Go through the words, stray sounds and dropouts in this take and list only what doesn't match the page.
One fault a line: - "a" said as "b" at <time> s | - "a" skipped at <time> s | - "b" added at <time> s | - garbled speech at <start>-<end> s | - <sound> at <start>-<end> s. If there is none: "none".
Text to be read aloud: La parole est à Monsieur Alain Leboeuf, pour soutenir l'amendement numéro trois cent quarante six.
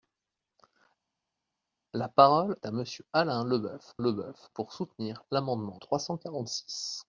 - "est" skipped at 2.5 s
- "Leboeuf" added at 4.0 s
- "numéro" skipped at 5.8 s